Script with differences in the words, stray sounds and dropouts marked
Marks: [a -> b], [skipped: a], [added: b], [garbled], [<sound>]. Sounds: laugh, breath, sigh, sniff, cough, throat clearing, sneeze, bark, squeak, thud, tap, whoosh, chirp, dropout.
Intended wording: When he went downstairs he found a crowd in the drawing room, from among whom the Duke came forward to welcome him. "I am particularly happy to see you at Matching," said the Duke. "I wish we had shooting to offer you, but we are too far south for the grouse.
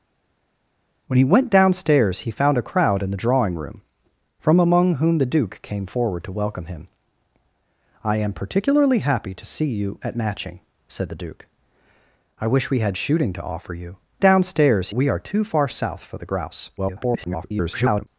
When he went downstairs he found a crowd in the drawing room, from among whom the Duke came forward to welcome him. "I am particularly happy to see you at Matching," said the Duke. "I wish we had shooting to offer you, [but -> downstairs] we are too far south for the grouse. [garbled]